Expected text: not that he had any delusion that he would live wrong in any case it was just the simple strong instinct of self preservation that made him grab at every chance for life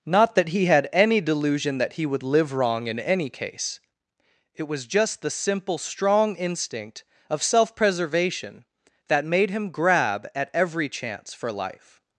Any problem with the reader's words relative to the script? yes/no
no